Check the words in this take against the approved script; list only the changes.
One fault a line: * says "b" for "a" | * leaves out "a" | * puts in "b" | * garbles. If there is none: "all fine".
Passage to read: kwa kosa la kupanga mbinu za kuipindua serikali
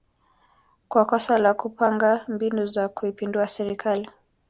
all fine